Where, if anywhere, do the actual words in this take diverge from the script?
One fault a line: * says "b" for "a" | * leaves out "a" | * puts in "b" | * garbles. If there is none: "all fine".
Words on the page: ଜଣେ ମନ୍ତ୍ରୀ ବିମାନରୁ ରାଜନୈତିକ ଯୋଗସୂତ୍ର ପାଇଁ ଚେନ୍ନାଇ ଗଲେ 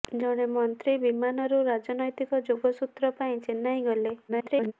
* garbles